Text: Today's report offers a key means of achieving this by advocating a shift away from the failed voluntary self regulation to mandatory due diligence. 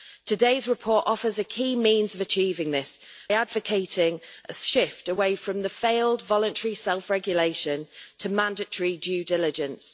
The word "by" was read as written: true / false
false